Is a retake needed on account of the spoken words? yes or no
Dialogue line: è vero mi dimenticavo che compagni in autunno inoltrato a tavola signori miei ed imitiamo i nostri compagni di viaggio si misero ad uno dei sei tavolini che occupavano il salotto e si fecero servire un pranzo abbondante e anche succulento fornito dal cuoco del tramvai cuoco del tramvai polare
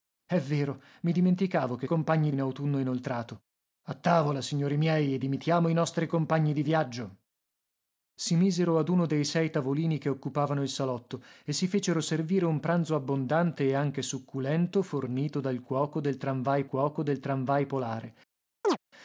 no